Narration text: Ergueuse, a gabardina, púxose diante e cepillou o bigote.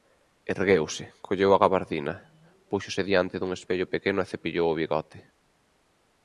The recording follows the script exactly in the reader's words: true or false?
false